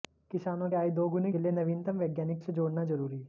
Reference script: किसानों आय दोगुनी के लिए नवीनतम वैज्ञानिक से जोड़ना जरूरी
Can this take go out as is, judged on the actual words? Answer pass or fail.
pass